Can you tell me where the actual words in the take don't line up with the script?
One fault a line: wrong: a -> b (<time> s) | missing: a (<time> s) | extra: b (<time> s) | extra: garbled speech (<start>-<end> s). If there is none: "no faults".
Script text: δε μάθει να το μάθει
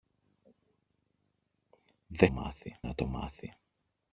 no faults